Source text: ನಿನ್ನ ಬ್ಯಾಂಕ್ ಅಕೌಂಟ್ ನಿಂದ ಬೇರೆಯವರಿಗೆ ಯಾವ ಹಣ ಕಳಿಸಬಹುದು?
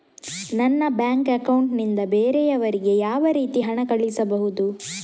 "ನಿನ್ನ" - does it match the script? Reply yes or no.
no